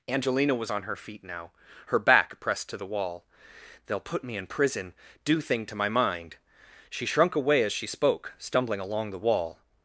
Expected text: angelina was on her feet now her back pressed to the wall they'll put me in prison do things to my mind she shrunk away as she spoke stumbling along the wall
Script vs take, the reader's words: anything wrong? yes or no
yes